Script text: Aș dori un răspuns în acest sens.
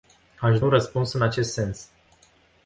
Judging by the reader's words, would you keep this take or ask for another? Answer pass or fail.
fail